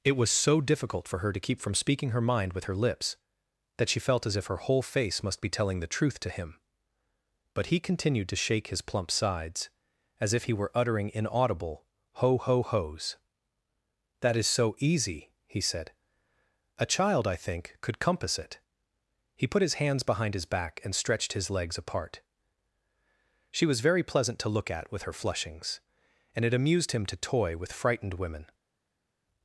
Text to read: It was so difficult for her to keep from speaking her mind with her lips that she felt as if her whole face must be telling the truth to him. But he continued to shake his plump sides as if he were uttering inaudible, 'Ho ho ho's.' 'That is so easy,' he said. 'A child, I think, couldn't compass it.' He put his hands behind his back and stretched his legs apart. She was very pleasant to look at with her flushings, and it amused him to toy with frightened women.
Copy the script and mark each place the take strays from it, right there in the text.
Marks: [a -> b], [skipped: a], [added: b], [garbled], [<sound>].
It was so difficult for her to keep from speaking her mind with her lips that she felt as if her whole face must be telling the truth to him. But he continued to shake his plump sides as if he were uttering inaudible, 'Ho ho ho's.' 'That is so easy,' he said. 'A child, I think, [couldn't -> could] compass it.' He put his hands behind his back and stretched his legs apart. She was very pleasant to look at with her flushings, and it amused him to toy with frightened women.